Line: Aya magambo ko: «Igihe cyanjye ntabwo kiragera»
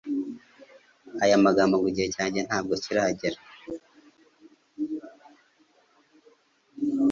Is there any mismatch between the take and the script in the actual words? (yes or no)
yes